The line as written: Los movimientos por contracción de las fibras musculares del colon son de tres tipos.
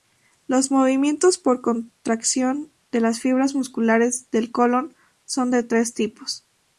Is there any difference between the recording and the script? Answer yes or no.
no